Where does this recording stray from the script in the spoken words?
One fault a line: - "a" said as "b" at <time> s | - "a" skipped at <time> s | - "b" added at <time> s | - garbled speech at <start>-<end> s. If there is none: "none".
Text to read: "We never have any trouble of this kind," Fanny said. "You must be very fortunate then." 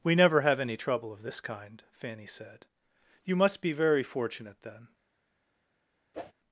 none